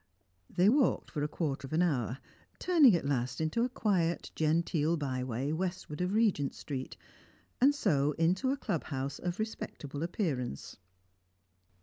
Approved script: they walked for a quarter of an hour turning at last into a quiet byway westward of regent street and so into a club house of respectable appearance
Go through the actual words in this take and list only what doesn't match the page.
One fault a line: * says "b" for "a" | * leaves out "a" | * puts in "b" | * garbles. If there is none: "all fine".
* puts in "genteel"